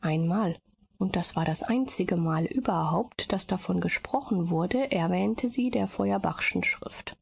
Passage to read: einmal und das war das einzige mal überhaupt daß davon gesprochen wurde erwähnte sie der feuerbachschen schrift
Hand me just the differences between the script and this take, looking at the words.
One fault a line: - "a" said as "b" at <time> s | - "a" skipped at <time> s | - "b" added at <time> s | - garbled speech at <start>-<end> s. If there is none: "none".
none